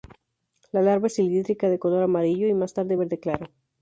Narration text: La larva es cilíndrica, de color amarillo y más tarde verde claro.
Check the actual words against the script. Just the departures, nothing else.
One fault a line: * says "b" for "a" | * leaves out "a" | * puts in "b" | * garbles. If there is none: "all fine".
all fine